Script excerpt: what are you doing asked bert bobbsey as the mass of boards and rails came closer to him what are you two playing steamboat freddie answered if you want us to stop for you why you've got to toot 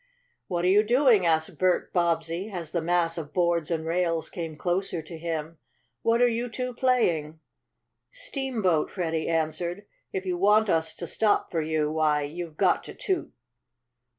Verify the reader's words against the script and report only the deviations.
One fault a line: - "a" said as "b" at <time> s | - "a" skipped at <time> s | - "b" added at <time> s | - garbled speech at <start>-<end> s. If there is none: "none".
none